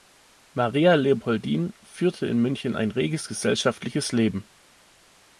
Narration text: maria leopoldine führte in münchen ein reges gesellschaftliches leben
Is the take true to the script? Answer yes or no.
yes